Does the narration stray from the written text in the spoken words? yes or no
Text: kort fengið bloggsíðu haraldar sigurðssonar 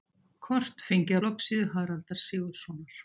no